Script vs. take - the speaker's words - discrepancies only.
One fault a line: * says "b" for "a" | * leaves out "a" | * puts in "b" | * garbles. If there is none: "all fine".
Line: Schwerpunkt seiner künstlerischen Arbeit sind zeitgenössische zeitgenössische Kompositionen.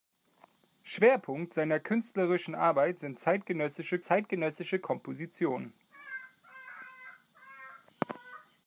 all fine